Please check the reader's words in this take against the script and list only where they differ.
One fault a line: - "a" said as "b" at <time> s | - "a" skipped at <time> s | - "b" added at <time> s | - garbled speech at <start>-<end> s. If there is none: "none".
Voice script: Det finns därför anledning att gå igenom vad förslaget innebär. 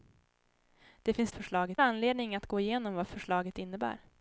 - "därför" said as "förslaget" at 1.3 s